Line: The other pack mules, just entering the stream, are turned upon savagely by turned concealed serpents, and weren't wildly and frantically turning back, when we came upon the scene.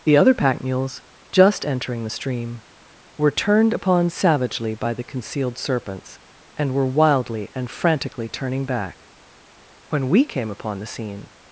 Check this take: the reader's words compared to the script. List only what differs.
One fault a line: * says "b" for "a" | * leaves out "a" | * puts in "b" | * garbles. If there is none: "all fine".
* says "were" for "are"
* says "the" for "turned"
* says "were" for "weren't"